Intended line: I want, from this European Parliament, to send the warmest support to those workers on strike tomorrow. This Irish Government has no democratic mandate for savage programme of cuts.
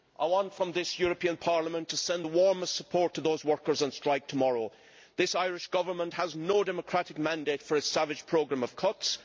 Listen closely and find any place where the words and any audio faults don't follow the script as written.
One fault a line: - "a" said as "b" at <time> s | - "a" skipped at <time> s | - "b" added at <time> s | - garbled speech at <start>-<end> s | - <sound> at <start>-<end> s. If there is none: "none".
- "its" added at 7.8 s